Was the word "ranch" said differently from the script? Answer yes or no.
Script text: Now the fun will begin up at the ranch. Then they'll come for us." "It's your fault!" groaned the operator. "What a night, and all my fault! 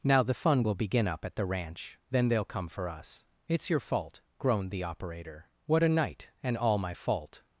no